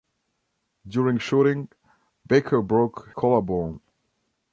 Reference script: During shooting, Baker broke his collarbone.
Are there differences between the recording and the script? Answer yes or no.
yes